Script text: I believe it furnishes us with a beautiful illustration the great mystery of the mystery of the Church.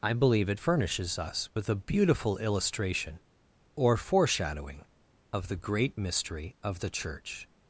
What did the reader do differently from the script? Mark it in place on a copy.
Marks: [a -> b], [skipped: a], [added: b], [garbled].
I believe it furnishes us with a beautiful illustration [the great mystery -> or foreshadowing] of the [added: great] mystery of the Church.